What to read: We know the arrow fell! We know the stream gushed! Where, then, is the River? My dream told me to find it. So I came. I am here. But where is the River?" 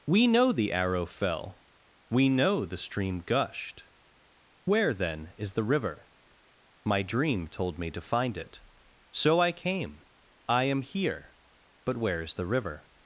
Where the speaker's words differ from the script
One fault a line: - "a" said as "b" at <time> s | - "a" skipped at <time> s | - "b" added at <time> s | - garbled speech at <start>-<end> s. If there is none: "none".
none